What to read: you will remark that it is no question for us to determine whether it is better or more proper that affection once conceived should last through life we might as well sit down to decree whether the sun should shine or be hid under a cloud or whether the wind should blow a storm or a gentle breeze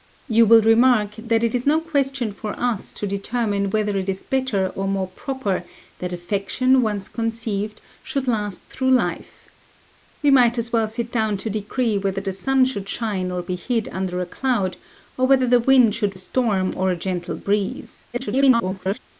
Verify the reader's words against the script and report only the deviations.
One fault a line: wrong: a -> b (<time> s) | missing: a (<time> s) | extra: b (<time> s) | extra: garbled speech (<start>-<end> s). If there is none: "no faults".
missing: blow (16.2 s)
extra: garbled speech (18.1-19.0 s)